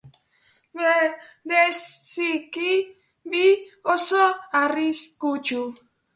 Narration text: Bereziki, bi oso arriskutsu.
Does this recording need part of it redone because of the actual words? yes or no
no